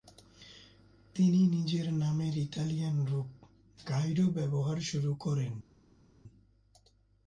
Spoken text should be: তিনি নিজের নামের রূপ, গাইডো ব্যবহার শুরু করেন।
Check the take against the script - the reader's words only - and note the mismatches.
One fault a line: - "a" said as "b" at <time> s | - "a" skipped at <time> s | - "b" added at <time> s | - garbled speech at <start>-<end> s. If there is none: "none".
- "ইতালিয়ান" added at 2.4 s